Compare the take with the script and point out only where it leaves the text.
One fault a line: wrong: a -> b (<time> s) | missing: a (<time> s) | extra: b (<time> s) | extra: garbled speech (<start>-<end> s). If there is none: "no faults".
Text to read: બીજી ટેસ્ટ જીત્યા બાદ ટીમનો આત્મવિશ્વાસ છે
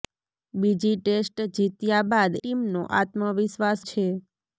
no faults